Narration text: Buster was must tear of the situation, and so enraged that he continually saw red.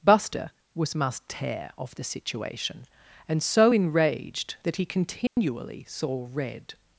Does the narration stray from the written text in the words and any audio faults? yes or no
yes